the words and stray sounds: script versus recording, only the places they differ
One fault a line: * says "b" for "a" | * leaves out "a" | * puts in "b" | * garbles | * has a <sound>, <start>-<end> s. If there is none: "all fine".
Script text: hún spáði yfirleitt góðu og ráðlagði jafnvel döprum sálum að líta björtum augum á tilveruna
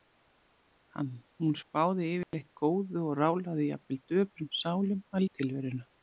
* has a dropout, 2.2-2.3 s
* leaves out "líta björtum augum"